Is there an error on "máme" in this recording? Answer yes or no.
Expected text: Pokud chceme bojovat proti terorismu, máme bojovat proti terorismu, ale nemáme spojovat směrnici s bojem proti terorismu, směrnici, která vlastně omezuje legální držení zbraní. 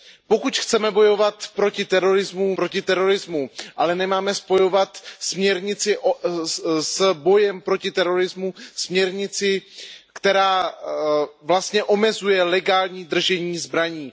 yes